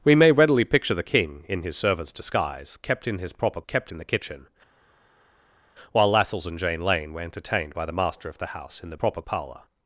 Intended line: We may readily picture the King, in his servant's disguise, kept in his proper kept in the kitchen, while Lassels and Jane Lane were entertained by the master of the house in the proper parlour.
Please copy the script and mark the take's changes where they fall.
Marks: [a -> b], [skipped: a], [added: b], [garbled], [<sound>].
We may readily picture the King, in his servant's disguise, kept in his proper kept in the kitchen, while Lassels and Jane Lane were entertained by the master of the house in the proper parlour.